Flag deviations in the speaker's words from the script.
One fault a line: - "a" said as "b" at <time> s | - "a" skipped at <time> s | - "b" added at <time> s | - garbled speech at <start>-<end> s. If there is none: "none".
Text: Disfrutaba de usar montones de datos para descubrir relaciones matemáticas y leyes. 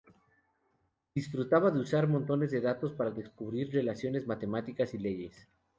none